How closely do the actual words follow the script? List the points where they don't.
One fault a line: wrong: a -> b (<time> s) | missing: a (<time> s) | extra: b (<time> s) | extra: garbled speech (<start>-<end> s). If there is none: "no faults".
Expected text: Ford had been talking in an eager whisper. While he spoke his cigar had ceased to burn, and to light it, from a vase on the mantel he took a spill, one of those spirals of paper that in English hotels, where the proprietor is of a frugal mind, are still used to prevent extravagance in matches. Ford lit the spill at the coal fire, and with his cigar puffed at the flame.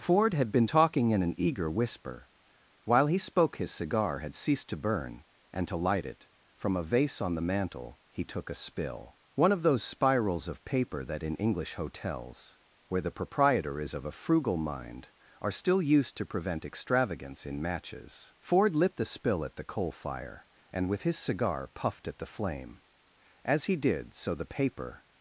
extra: As he did so the paper (23.4 s)